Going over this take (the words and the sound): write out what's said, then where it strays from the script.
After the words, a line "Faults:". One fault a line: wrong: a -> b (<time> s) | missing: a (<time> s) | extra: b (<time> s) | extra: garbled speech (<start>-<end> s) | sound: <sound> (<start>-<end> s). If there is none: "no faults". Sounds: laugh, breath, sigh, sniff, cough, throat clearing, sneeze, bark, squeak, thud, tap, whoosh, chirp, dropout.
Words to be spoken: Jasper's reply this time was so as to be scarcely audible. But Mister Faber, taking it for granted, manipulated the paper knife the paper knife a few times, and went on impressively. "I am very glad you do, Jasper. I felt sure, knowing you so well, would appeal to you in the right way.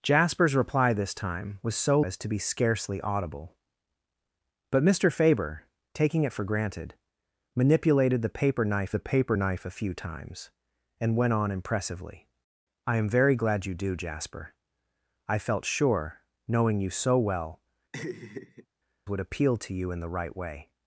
Jasper's reply this time was so as to be scarcely audible. But Mister Faber, taking it for granted, manipulated the paper knife the paper knife a few times, and went on impressively. "I am very glad you do, Jasper. I felt sure, knowing you so well, would appeal to you in the right way.
Faults:
sound: laugh (17.9-18.7 s)